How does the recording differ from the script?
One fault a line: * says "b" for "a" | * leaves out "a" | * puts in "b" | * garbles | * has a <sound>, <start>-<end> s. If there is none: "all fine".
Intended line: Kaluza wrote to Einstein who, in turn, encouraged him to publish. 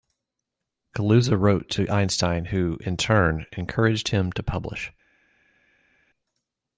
all fine